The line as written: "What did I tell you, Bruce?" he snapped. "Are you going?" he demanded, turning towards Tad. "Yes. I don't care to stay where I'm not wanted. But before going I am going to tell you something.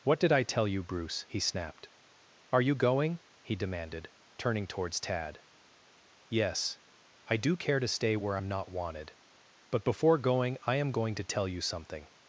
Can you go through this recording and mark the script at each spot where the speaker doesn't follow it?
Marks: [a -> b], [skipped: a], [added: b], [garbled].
"What did I tell you, Bruce?" he snapped. "Are you going?" he demanded, turning towards Tad. "Yes. I [don't -> do] care to stay where I'm not wanted. But before going I am going to tell you something.